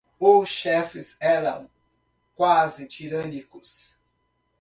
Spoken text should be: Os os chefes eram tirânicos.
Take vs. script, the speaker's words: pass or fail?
fail